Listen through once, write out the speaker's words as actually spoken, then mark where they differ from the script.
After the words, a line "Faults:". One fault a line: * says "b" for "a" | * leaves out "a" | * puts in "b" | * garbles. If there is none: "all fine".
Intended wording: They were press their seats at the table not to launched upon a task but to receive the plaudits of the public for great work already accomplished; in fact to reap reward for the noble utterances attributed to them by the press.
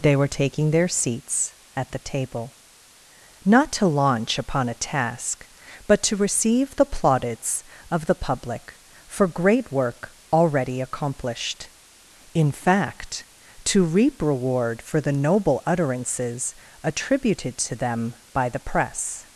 They were taking their seats at the table not to launch upon a task but to receive the plaudits of the public for great work already accomplished; in fact to reap reward for the noble utterances attributed to them by the press.
Faults:
* says "taking" for "press"
* says "launch" for "launched"